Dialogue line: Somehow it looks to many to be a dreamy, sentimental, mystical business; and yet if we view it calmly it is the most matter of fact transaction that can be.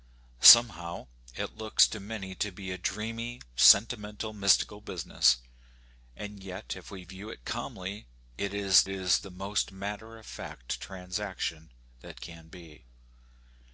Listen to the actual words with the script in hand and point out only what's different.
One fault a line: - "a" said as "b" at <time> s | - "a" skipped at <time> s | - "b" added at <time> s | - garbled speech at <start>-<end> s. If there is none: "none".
- "is" added at 8.9 s